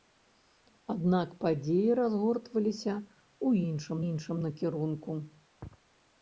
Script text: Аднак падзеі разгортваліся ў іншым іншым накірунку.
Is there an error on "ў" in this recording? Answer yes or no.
no